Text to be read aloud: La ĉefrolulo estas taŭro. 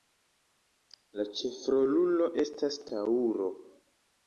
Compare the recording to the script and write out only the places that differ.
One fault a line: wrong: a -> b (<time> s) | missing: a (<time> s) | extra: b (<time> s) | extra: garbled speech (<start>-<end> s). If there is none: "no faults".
no faults